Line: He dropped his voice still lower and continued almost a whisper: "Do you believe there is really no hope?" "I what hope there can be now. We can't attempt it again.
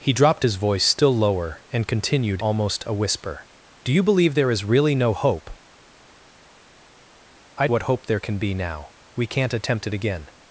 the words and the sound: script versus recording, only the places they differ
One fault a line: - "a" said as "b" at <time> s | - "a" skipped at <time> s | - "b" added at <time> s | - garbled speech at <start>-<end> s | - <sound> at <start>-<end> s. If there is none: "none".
none